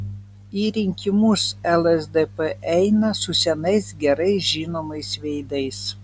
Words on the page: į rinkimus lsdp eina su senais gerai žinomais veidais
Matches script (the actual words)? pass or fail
pass